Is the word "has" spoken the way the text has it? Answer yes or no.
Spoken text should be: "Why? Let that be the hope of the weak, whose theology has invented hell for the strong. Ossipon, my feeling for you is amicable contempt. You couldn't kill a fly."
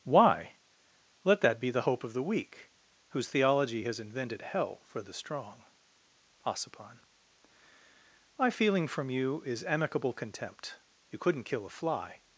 yes